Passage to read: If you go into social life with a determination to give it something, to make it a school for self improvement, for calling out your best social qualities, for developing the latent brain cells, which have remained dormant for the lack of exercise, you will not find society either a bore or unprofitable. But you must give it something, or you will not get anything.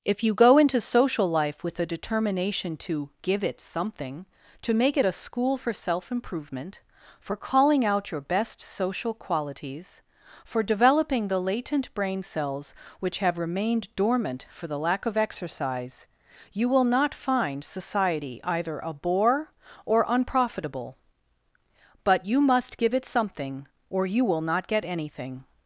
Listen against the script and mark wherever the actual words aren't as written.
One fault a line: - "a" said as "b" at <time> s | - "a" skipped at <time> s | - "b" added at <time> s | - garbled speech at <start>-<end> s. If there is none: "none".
none